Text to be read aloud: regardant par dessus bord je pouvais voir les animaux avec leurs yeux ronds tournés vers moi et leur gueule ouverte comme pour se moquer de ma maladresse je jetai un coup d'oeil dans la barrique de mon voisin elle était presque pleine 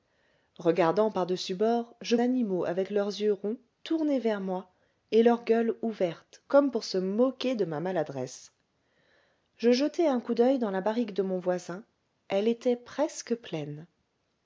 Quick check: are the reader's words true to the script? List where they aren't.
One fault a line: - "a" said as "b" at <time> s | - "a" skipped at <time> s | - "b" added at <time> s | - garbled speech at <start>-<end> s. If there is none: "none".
- "pouvais voir les" skipped at 2.1 s